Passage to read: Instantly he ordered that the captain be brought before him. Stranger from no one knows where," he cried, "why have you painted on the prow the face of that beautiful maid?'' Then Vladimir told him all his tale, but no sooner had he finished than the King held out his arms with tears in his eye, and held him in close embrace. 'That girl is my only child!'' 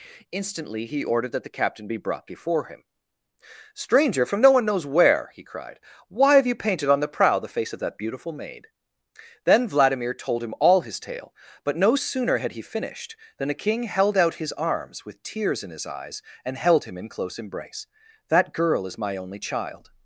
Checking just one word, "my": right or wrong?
right